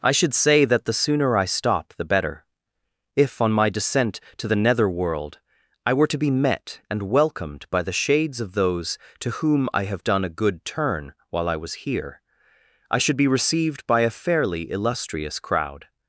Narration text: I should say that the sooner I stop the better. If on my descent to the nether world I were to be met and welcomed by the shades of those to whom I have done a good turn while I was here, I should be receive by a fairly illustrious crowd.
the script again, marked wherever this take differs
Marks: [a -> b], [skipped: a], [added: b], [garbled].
I should say that the sooner I stop the better. If on my descent to the nether world I were to be met and welcomed by the shades of those to whom I have done a good turn while I was here, I should be [receive -> received] by a fairly illustrious crowd.